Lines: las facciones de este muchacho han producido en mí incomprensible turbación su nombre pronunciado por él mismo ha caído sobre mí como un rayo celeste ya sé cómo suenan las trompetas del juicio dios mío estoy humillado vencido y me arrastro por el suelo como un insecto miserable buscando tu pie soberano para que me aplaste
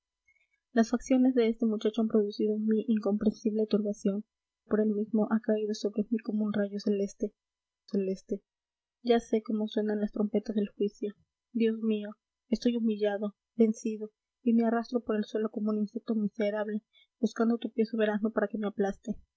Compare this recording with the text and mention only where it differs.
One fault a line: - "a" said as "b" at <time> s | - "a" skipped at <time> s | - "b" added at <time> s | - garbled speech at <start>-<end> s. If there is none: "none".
- "su nombre pronunciado" skipped at 4.2 s
- "celeste" added at 7.9 s